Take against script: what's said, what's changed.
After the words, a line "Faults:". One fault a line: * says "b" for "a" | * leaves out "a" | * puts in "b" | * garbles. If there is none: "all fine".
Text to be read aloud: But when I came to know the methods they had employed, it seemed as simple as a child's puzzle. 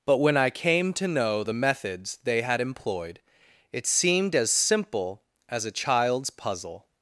But when I came to know the methods they had employed, it seemed as simple as a child's puzzle.
Faults:
all fine